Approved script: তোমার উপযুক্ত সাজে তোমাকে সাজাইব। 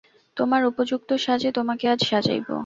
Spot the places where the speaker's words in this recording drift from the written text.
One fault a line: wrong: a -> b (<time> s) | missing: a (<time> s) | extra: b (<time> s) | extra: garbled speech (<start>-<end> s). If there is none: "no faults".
extra: আজ (1.9 s)